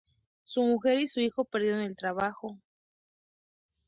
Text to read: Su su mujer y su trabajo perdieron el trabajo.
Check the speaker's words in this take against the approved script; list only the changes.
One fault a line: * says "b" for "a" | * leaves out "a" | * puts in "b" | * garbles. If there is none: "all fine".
* leaves out "su"
* says "hijo" for "trabajo"